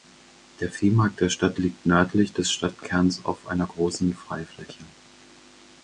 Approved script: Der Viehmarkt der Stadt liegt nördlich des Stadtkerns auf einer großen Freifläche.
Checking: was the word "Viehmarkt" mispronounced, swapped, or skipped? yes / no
no